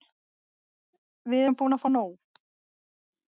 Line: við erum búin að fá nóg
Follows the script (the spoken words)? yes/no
yes